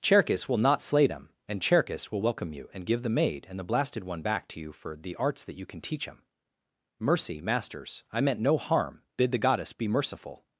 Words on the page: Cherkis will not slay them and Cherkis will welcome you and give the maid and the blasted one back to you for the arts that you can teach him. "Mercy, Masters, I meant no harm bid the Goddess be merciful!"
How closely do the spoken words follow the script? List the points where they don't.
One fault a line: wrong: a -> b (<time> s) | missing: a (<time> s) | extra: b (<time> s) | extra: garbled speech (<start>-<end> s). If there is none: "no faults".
no faults